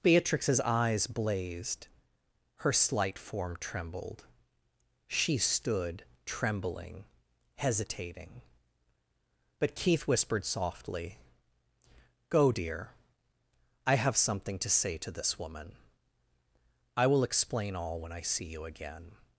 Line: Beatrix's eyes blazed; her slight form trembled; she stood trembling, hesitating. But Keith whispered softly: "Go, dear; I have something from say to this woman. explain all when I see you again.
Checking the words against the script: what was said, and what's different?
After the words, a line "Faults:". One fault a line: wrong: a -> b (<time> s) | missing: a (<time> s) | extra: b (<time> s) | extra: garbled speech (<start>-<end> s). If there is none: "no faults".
Beatrix's eyes blazed; her slight form trembled; she stood trembling, hesitating. But Keith whispered softly: "Go, dear; I have something to say to this woman. I will explain all when I see you again.
Faults:
wrong: from -> to (14.6 s)
extra: I will (17.0 s)